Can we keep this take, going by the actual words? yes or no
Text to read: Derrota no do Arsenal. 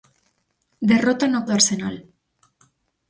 yes